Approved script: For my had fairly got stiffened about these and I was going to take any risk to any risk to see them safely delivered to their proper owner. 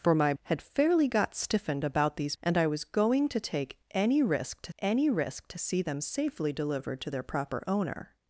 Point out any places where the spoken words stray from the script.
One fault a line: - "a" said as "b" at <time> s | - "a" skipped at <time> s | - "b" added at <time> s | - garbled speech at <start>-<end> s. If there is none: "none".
none